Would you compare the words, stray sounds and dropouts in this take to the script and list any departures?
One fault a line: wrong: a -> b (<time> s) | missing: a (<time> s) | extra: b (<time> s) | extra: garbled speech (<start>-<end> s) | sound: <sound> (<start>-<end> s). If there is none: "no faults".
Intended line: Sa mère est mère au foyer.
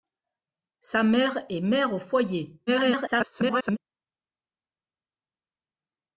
extra: garbled speech (2.7-3.8 s)